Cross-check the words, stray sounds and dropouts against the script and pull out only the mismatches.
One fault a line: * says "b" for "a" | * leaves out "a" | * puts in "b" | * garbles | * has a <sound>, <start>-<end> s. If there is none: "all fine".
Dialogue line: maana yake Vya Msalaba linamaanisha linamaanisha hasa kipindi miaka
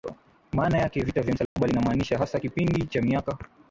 * puts in "Vita"
* has a dropout, 1.5-1.6 s
* leaves out "linamaanisha"
* puts in "cha"